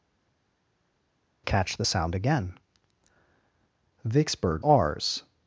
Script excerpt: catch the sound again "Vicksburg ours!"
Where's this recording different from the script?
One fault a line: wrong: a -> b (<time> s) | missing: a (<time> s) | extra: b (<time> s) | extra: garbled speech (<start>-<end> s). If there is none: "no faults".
no faults